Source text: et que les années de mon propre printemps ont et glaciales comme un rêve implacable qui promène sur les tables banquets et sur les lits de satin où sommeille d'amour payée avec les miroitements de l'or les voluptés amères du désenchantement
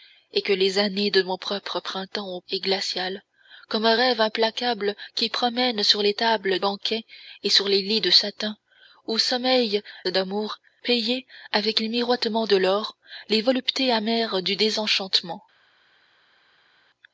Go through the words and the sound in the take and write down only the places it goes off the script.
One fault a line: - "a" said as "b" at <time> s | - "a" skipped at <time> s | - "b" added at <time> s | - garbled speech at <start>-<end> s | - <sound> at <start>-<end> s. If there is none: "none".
none